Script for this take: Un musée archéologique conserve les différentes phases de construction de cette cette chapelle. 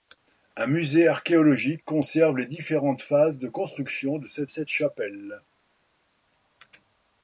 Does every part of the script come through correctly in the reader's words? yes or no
yes